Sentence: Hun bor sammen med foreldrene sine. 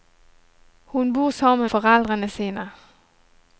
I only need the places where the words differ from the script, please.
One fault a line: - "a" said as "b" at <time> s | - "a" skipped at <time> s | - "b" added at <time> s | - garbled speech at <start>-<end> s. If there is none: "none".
- "med" skipped at 1.7 s